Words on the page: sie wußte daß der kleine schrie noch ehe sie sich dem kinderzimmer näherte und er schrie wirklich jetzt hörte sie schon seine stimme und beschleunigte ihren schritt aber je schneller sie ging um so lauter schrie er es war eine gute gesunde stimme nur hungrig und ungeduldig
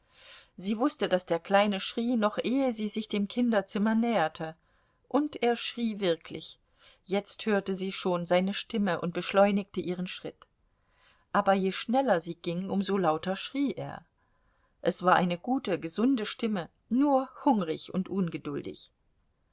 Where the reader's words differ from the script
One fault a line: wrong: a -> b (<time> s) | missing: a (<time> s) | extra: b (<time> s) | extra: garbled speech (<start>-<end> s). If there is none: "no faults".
no faults